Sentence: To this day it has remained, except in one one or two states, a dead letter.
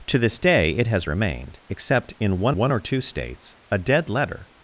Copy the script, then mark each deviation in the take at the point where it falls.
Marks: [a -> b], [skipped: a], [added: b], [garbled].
To this day it has remained, except in one one or two states, a dead letter.